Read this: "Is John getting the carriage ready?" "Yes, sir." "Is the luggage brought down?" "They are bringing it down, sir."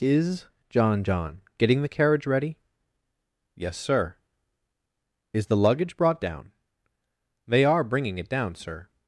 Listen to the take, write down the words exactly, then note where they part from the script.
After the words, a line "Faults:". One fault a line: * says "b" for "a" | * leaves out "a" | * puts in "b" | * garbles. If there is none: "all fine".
"Is John John getting the carriage ready?" "Yes, sir." "Is the luggage brought down?" "They are bringing it down, sir."
Faults:
* puts in "John"